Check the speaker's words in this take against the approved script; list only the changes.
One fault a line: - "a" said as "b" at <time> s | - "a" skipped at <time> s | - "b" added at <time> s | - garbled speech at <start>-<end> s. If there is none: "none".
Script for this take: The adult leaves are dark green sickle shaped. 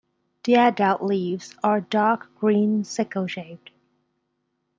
none